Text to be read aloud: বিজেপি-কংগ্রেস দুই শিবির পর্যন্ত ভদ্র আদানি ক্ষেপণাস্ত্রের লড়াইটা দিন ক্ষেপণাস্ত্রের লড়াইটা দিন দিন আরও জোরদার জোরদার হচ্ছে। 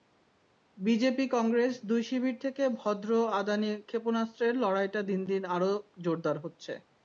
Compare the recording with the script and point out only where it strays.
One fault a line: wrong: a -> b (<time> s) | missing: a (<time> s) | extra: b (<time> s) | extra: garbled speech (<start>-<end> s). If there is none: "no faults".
wrong: পর্যন্ত -> থেকে (2.4 s)
missing: ক্ষেপণাস্ত্রের লড়াইটা (5.2 s)
missing: দিন (5.4 s)
missing: জোরদার (6.4 s)